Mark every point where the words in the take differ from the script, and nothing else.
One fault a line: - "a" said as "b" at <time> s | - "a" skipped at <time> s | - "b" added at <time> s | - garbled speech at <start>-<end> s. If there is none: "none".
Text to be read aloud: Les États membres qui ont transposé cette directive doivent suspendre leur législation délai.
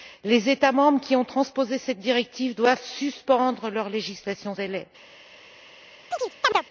none